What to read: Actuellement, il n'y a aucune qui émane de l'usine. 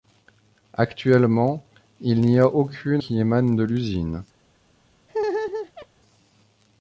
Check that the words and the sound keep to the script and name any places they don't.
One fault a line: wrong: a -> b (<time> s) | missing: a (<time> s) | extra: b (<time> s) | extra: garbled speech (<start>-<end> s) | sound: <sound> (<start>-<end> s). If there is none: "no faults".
sound: laugh (5.1-5.9 s)